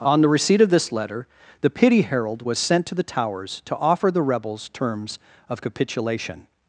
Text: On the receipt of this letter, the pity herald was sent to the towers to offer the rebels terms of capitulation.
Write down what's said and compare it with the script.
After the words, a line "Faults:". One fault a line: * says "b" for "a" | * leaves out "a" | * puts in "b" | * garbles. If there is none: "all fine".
On the receipt of this letter, the pity herald was sent to the towers to offer the rebels terms of capitulation.
Faults:
all fine